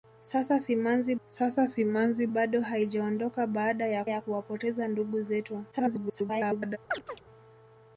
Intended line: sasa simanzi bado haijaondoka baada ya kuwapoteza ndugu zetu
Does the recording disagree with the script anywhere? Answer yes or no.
yes